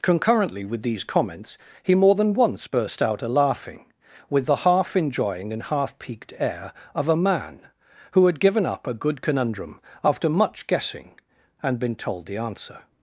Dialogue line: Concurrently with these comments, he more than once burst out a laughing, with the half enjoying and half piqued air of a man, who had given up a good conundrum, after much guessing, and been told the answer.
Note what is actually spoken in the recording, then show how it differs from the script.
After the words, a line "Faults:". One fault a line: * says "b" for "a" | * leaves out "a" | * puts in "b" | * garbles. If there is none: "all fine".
Concurrently with these comments, he more than once burst out a laughing, with the half enjoying and half piqued air of a man, who had given up a good conundrum, after much guessing, and been told the answer.
Faults:
all fine